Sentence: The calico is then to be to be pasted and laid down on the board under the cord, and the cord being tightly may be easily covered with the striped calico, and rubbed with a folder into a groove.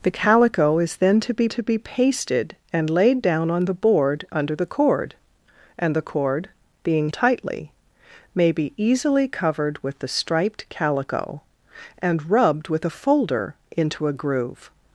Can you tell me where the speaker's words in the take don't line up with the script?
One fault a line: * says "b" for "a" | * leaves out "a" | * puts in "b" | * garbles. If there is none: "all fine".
all fine